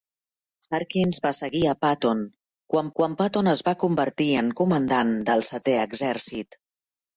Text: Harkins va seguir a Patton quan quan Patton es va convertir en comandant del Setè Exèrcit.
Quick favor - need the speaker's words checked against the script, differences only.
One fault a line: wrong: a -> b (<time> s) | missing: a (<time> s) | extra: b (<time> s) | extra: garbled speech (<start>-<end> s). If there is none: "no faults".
no faults